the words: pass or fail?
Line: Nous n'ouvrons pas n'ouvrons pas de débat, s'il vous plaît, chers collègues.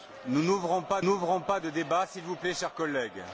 pass